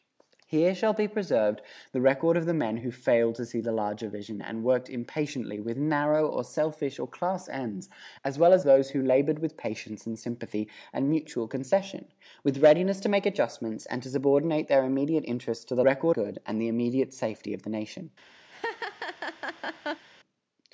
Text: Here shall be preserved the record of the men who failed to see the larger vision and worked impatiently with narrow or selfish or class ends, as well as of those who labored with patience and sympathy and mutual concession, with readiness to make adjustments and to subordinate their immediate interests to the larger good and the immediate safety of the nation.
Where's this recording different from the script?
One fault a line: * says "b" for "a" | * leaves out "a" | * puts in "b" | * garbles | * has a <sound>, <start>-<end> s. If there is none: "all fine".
* leaves out "of"
* says "record" for "larger"
* has a laugh, 18.5-20.1 s